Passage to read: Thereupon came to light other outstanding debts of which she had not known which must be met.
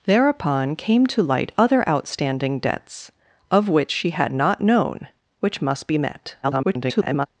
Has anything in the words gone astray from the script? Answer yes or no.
yes